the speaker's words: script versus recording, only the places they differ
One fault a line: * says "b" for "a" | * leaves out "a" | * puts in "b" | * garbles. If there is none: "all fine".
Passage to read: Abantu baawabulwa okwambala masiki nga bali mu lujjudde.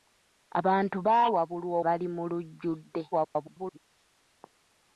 * leaves out "okwambala masiki nga"
* garbles